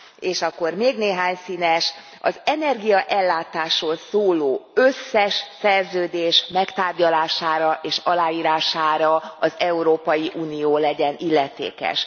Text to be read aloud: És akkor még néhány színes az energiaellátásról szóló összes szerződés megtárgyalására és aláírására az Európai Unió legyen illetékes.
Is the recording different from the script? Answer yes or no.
no